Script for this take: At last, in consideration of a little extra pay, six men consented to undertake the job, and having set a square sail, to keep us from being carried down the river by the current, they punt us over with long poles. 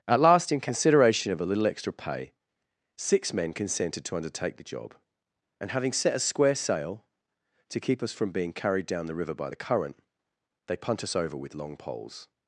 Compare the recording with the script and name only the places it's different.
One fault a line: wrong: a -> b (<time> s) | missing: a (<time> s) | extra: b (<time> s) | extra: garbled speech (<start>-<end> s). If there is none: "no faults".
no faults